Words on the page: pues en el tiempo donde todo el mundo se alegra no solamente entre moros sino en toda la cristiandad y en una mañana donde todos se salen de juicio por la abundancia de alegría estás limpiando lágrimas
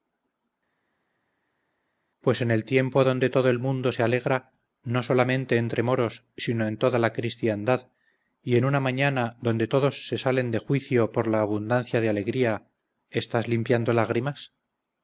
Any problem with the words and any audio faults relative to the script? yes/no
no